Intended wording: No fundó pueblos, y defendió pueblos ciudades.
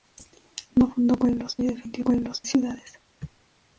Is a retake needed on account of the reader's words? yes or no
no